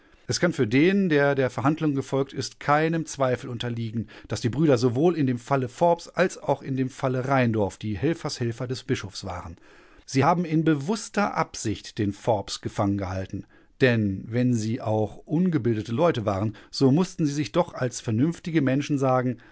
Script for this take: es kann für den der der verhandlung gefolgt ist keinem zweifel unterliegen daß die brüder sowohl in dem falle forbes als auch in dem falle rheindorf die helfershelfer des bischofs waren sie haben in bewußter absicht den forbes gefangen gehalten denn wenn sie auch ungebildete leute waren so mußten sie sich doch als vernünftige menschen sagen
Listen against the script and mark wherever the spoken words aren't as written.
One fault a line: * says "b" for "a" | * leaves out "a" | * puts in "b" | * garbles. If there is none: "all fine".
all fine